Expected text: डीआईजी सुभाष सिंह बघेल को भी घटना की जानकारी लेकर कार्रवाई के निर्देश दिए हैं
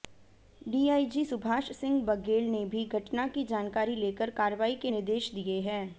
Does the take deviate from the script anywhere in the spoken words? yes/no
yes